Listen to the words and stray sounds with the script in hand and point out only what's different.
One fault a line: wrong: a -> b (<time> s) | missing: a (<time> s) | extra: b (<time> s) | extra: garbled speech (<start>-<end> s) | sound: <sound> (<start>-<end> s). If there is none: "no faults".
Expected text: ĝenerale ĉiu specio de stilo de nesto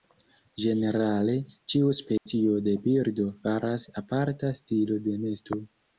sound: dropout (2.2-2.3 s)
extra: birdo faras aparta (2.9 s)